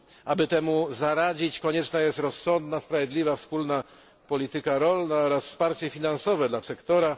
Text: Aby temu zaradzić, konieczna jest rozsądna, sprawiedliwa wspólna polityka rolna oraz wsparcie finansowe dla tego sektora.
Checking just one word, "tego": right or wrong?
wrong